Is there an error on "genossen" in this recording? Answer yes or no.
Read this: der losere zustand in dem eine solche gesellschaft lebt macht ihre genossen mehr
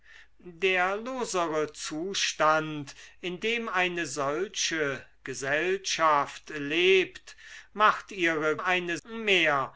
yes